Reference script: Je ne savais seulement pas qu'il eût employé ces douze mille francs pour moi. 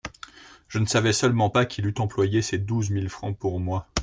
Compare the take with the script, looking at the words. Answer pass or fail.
pass